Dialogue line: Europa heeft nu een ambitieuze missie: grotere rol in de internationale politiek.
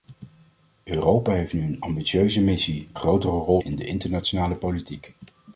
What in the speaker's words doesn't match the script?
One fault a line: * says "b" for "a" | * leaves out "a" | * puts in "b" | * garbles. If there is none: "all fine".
all fine